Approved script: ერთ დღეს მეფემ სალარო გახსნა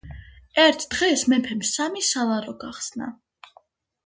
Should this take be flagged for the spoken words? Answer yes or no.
yes